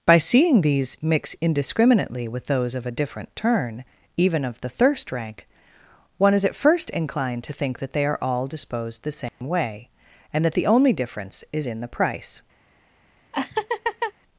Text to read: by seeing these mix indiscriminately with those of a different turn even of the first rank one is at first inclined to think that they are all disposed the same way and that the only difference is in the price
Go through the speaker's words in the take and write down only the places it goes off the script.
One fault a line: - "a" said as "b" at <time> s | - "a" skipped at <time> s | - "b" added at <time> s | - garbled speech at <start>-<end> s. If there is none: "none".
- "first" said as "thirst" at 4.7 s